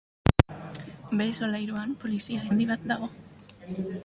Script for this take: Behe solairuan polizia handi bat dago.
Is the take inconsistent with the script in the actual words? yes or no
no